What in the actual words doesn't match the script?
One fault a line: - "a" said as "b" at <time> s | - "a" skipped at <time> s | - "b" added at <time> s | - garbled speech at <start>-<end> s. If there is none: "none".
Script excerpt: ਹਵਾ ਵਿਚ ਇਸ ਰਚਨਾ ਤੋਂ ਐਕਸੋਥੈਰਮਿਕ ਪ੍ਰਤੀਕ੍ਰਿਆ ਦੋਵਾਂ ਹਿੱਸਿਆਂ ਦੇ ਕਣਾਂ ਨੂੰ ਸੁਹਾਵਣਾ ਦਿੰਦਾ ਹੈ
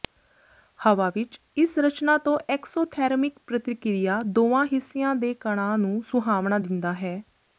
none